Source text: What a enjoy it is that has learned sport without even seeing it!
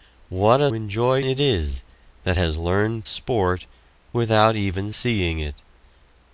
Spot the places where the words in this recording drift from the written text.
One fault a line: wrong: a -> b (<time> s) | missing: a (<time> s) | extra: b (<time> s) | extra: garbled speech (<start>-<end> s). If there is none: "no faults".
no faults